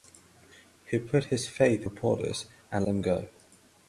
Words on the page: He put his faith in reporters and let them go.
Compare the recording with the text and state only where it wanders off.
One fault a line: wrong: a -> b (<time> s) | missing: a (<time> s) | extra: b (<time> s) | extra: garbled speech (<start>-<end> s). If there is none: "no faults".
missing: in (1.8 s)
missing: let (2.9 s)